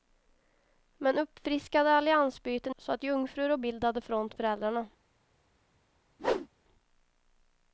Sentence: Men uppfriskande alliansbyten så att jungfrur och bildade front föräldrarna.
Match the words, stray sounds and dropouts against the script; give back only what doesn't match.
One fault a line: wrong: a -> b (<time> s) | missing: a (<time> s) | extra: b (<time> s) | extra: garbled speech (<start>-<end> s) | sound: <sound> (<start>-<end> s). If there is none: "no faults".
sound: whoosh (6.2-6.5 s)